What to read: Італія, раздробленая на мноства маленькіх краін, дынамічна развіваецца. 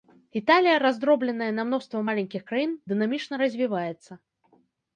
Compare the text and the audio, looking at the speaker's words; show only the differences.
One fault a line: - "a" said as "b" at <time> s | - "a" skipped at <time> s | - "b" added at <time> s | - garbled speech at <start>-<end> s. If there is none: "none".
none